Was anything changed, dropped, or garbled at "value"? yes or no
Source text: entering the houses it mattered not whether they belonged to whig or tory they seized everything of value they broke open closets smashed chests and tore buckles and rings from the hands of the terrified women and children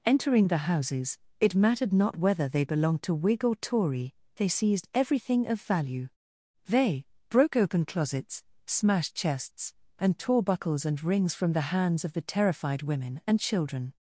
no